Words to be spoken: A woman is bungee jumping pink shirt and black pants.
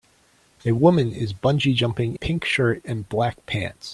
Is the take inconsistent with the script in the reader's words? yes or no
no